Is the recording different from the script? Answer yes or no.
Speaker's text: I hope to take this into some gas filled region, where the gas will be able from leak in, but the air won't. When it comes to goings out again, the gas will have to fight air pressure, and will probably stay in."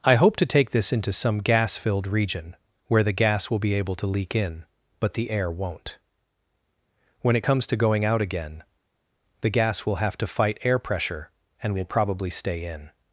yes